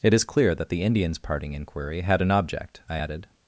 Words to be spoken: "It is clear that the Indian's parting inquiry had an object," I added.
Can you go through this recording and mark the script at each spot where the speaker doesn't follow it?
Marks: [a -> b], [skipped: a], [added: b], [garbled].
"It is clear that the Indian's parting inquiry had an object," I added.